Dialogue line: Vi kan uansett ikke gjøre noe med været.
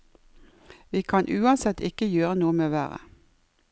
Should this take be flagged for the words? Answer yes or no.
no